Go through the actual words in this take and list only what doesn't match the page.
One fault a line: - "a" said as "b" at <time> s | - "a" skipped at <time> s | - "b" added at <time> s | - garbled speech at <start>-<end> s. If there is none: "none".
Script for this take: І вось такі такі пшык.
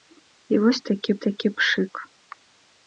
none